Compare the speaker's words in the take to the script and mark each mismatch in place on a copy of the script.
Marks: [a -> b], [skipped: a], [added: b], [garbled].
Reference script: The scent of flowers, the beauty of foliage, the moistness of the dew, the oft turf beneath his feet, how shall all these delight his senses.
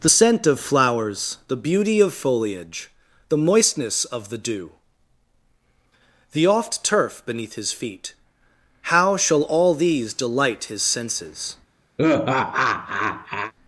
The scent of flowers, the beauty of foliage, the moistness of the dew, the oft turf beneath his feet, how shall all these delight his senses.